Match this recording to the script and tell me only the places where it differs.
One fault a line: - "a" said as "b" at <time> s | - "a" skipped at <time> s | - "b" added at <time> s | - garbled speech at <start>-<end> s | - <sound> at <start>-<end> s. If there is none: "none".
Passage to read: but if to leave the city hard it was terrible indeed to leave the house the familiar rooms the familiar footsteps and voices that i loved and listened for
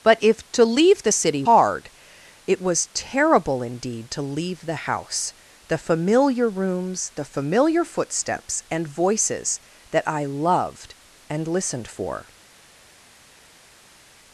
none